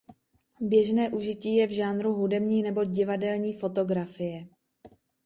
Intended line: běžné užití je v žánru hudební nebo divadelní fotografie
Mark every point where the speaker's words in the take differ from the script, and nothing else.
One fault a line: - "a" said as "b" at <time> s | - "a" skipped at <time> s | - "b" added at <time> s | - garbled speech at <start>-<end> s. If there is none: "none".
none